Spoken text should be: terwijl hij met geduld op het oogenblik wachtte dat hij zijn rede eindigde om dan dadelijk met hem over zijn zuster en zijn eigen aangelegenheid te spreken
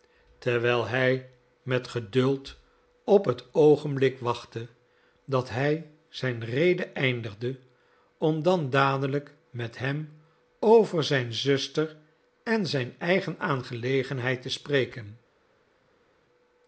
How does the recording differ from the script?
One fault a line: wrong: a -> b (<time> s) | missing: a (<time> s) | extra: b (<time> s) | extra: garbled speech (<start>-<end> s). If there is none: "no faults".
no faults